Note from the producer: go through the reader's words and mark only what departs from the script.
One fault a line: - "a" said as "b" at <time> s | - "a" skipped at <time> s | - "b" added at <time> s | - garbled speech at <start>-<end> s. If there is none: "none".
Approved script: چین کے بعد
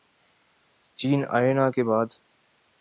- "آئے نہ" added at 1.4 s